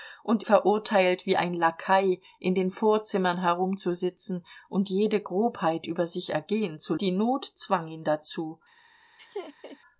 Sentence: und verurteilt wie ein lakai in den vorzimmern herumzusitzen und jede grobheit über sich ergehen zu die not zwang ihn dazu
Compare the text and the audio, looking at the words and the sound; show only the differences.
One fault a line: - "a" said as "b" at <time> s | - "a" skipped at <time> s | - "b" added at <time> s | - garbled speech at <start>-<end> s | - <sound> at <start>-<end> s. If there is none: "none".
- laugh at 9.2-9.8 s